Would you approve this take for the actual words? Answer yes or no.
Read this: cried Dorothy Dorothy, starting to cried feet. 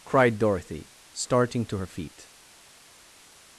no